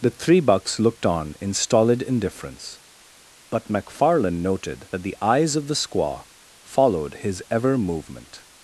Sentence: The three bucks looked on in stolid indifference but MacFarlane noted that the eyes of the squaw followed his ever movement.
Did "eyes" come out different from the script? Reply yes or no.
no